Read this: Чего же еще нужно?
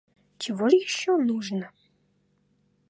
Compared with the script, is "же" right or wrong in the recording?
wrong